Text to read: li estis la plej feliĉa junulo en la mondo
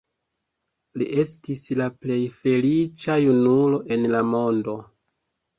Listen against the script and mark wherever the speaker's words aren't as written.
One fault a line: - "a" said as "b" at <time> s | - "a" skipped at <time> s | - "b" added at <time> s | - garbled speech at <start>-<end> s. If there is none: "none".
none